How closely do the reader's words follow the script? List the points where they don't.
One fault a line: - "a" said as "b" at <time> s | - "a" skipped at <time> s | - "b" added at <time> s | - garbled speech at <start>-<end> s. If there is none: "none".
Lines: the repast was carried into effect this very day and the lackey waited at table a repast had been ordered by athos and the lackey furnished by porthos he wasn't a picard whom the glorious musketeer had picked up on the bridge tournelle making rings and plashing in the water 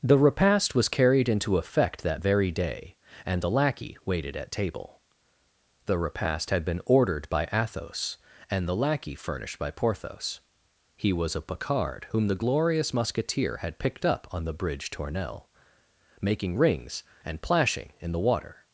- "this" said as "that" at 2.0 s
- "a" said as "the" at 5.9 s
- "wasn't" said as "was" at 11.1 s